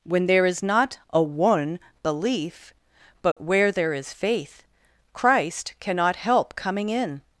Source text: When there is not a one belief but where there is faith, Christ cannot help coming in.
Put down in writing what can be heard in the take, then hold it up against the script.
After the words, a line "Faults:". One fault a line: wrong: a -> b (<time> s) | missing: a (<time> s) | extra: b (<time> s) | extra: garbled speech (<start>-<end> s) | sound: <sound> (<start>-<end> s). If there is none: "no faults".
When there is not a one belief but where there is faith, Christ cannot help coming in.
Faults:
sound: dropout (3.3-3.4 s)